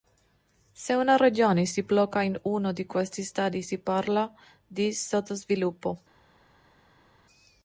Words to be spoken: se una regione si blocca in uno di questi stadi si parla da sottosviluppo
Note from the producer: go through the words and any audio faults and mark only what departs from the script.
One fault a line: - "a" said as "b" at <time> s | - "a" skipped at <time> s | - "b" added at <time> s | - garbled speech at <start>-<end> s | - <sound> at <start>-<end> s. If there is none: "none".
- "da" said as "di" at 4.7 s